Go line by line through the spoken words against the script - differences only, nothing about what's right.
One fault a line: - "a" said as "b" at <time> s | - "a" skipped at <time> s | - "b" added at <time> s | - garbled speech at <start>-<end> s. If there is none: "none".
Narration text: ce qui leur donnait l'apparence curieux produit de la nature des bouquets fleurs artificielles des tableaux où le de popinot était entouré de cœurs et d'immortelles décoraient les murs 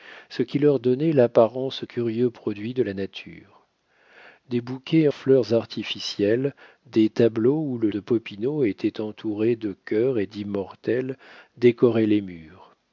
none